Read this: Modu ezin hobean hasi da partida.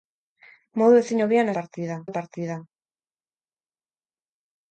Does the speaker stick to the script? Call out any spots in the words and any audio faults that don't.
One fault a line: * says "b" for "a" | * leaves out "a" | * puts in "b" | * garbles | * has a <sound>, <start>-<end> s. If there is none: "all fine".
* says "partida" for "hasi"